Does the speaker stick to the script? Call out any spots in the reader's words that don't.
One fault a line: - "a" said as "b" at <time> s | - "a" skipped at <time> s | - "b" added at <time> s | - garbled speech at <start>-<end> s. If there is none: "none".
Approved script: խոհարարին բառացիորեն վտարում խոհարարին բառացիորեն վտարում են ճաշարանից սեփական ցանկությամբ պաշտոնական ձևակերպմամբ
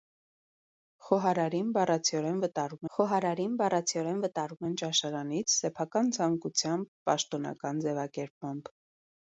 none